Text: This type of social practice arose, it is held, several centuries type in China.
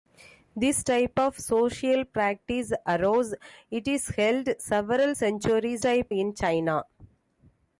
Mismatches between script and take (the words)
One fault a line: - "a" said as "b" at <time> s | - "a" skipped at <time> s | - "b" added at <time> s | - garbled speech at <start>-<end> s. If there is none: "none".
none